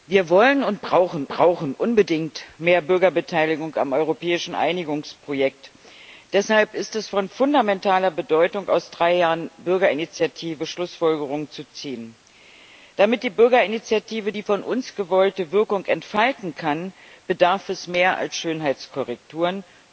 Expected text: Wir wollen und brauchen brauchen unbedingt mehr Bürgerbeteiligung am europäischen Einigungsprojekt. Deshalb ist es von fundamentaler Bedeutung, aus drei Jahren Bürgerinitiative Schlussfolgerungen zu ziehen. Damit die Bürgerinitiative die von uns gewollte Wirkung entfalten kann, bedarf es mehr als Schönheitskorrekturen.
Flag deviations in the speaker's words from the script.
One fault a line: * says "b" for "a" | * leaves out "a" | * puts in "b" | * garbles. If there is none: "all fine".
all fine